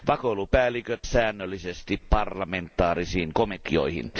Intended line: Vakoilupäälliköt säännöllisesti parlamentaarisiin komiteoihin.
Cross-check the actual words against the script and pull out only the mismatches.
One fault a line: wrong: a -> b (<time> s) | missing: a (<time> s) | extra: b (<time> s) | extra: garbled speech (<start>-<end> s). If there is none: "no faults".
no faults